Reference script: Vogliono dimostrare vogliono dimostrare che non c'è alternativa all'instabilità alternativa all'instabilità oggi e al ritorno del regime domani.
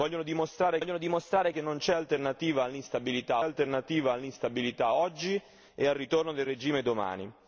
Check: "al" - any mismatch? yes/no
no